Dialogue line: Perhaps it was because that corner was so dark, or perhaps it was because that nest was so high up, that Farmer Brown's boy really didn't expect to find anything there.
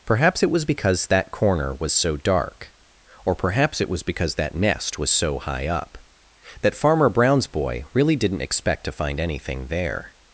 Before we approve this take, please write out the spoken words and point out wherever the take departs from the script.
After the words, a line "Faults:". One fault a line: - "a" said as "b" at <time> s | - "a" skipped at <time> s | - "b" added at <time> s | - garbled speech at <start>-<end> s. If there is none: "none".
Perhaps it was because that corner was so dark, or perhaps it was because that nest was so high up, that Farmer Brown's boy really didn't expect to find anything there.
Faults:
none